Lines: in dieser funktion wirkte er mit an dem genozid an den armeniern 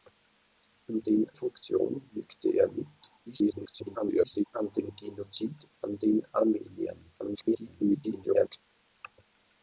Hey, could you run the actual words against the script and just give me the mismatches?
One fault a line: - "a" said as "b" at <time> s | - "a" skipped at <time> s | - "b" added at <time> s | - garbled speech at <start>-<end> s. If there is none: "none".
- "dieser" said as "den" at 1.0 s
- garbled speech at 3.3-4.4 s
- garbled speech at 7.2-8.6 s